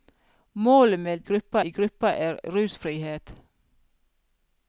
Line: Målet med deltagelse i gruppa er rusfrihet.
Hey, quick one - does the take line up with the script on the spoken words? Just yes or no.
no